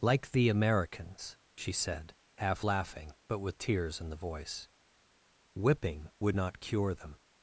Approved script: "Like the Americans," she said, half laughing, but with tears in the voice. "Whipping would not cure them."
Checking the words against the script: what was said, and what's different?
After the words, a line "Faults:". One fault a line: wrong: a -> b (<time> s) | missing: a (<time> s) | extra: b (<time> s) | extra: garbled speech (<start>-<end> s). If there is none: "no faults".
"Like the Americans," she said, half laughing, but with tears in the voice. "Whipping would not cure them."
Faults:
no faults